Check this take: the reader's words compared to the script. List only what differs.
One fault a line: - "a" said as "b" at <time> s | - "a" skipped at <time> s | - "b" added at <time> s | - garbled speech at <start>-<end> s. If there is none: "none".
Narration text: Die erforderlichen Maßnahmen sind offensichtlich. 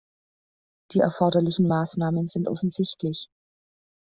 none